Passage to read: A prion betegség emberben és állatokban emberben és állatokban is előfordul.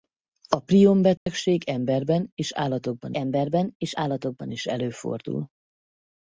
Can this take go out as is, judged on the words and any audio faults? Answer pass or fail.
fail